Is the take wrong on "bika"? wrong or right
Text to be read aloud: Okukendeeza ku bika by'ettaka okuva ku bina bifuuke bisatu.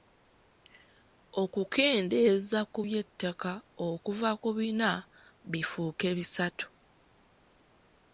wrong